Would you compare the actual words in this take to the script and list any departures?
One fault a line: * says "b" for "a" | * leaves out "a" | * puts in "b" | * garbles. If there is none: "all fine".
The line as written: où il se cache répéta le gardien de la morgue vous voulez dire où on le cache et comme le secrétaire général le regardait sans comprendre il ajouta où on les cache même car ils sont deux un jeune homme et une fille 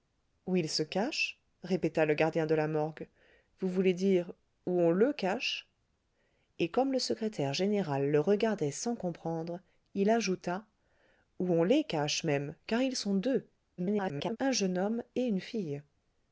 * garbles